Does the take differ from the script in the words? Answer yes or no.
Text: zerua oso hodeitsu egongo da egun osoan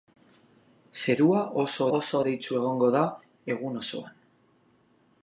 yes